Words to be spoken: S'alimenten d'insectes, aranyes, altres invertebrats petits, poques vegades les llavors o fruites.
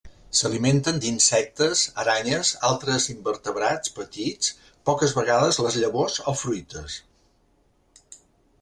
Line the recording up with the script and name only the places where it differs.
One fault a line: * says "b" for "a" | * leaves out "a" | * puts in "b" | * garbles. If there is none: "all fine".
all fine